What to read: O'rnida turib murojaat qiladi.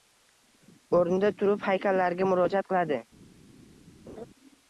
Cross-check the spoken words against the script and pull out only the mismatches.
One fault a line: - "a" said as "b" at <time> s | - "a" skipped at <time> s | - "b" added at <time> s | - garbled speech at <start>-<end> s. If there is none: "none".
- "haykallarga" added at 1.7 s